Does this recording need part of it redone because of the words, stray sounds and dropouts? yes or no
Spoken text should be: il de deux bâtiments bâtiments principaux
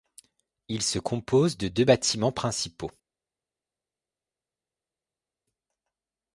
yes